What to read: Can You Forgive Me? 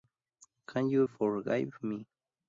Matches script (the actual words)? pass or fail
pass